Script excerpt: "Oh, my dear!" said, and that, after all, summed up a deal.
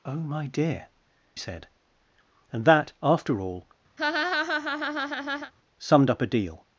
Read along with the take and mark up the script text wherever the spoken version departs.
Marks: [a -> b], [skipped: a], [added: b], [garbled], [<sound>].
"Oh, my dear!" said, and that, after all, [laugh] summed up a deal.